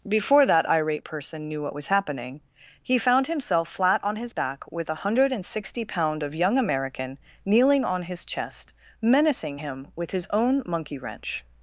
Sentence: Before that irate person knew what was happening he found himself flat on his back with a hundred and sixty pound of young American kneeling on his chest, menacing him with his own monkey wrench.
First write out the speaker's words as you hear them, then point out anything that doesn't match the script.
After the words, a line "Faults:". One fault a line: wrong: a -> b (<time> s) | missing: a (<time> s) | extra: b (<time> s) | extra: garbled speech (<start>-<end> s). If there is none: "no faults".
Before that irate person knew what was happening he found himself flat on his back with a hundred and sixty pound of young American kneeling on his chest, menacing him with his own monkey wrench.
Faults:
no faults